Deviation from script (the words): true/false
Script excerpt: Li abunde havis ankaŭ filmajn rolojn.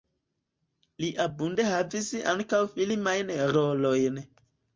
false